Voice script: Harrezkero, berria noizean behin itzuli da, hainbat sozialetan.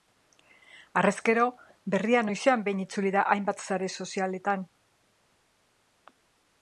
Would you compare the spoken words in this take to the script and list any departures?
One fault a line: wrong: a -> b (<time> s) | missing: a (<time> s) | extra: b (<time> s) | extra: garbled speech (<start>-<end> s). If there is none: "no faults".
extra: sare (3.7 s)